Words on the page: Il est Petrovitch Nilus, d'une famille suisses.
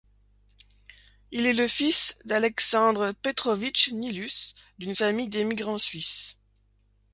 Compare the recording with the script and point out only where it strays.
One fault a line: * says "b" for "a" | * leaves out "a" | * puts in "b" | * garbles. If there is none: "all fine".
* puts in "le fils d'Aleksandr"
* puts in "d'émigrants"